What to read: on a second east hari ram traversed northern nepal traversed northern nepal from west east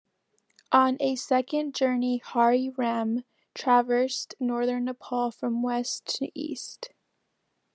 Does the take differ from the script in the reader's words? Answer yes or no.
yes